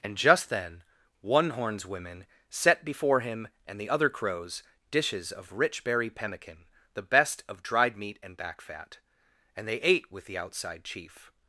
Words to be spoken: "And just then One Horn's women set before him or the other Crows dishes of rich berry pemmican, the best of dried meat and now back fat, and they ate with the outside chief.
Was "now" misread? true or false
true